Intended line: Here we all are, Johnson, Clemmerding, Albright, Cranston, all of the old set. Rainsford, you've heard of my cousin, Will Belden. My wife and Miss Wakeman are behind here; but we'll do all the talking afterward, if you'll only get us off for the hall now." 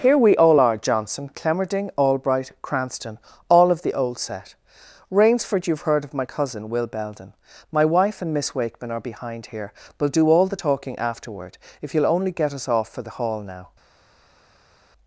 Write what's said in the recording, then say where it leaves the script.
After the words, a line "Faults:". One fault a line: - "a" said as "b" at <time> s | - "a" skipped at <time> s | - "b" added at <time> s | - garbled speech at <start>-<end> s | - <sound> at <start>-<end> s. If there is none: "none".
Here we all are, Johnson, Clemmerding, Albright, Cranston, all of the old set. Rainsford, you've heard of my cousin, Will Belden. My wife and Miss Wakeman are behind here; we'll do all the talking afterward, if you'll only get us off for the hall now."
Faults:
- "but" skipped at 9.7 s